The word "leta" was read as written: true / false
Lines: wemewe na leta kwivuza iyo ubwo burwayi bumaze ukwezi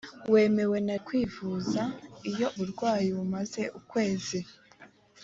false